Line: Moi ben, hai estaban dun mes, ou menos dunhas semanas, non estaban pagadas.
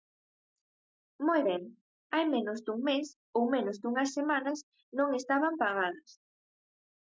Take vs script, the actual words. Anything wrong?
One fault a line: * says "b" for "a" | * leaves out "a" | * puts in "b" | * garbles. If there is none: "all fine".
* says "menos" for "estaban"